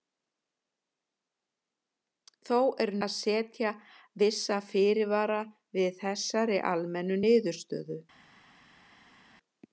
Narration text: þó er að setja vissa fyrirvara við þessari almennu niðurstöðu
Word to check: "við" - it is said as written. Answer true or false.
true